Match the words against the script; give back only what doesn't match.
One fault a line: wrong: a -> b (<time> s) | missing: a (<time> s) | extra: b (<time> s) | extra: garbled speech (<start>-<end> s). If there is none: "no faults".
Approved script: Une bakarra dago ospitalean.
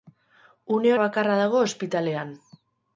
no faults